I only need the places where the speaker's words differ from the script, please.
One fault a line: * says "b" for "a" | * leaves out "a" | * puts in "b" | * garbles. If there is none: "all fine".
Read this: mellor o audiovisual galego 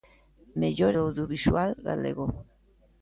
all fine